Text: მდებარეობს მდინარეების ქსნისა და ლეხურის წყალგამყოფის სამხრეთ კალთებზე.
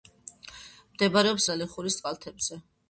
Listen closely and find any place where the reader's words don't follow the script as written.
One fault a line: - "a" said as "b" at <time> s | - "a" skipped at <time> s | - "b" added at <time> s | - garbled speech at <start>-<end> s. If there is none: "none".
- "მდინარეების ქსნისა" skipped at 1.4 s
- "წყალგამყოფის სამხრეთ" skipped at 2.0 s